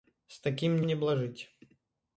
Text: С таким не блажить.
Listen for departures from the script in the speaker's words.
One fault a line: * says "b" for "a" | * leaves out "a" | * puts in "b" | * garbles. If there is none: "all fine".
all fine